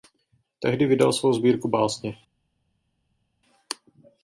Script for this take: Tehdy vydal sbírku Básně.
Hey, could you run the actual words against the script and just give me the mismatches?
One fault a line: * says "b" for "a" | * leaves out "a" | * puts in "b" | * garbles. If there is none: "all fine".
* puts in "svou"